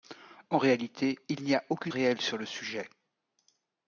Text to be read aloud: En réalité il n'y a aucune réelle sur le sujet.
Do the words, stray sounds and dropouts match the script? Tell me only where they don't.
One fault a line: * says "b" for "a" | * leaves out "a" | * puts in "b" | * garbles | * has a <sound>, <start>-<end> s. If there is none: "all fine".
all fine